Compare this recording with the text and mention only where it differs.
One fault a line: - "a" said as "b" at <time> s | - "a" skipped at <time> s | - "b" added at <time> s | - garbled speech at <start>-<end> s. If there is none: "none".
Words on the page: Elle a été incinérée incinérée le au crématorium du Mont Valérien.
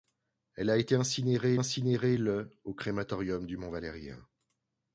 none